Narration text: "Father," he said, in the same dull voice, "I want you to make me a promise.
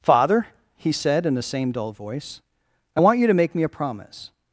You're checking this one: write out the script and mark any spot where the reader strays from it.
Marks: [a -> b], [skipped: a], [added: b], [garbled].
"Father," he said, in the same dull voice, "I want you to make me a promise.